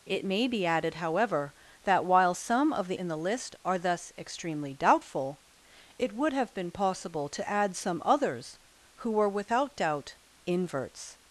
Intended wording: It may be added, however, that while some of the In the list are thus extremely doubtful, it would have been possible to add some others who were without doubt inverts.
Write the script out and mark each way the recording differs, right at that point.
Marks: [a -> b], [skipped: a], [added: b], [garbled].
It may be added, however, that while some of the In the list are thus extremely doubtful, it would have been possible to add some others who were without doubt inverts.